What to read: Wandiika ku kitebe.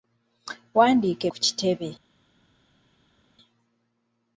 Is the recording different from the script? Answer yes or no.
no